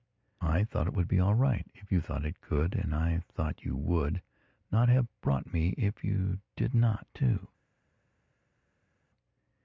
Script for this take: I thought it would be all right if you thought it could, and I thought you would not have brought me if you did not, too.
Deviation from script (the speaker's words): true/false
false